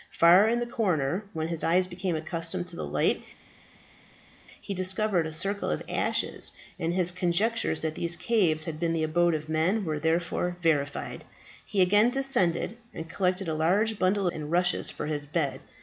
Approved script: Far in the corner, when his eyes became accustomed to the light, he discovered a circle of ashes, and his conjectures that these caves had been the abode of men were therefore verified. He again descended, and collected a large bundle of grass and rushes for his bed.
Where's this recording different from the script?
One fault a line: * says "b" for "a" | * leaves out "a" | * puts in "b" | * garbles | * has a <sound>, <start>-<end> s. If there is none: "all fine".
* leaves out "of grass"